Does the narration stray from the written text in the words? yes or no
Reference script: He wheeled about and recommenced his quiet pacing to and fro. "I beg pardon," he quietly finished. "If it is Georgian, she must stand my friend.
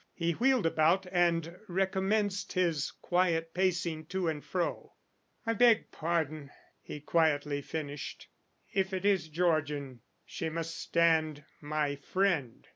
no